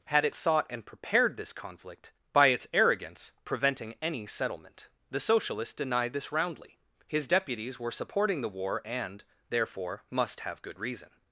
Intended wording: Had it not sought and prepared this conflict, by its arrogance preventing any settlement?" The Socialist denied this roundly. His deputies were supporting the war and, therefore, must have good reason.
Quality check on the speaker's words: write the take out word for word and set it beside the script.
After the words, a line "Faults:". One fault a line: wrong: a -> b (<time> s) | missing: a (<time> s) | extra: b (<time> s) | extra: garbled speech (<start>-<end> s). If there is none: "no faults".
Had it sought and prepared this conflict, by its arrogance preventing any settlement?" The Socialist denied this roundly. His deputies were supporting the war and, therefore, must have good reason.
Faults:
missing: not (0.3 s)